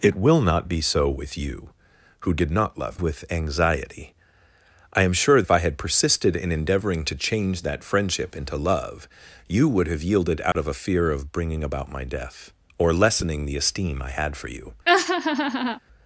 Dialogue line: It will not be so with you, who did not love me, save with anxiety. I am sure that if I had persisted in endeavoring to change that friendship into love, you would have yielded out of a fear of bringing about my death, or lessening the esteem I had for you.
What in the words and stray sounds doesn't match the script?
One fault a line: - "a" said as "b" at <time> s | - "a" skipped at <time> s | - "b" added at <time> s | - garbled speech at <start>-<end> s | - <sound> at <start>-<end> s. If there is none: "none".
- "me save" skipped at 3.0 s
- "that" skipped at 5.4 s
- dropout at 10.5-10.6 s
- laugh at 14.9-15.8 s